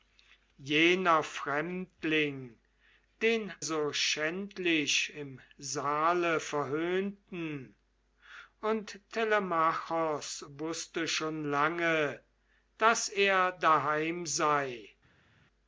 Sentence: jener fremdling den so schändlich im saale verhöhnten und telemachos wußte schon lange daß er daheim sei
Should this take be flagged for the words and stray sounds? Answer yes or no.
no